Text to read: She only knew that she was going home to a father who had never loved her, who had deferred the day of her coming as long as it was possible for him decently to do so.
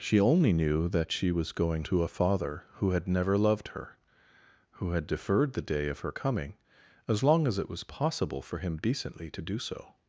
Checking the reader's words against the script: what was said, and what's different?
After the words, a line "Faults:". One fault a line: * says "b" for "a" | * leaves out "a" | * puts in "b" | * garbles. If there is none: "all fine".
She only knew that she was going to a father who had never loved her, who had deferred the day of her coming as long as it was possible for him decently to do so.
Faults:
* leaves out "home"